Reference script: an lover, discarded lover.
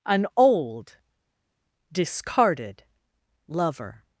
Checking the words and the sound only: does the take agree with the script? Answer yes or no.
no